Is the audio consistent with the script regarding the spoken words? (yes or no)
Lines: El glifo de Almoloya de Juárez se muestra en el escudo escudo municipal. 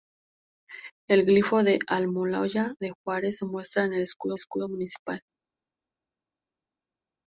yes